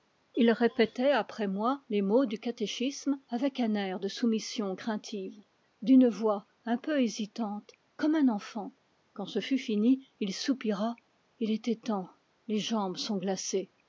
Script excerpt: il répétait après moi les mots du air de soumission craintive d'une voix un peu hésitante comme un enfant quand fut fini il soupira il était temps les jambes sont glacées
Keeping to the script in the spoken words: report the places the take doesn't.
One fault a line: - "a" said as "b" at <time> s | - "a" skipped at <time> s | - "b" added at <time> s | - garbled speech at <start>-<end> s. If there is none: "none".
- "catéchisme avec un" added at 2.4 s
- "ce" added at 9.3 s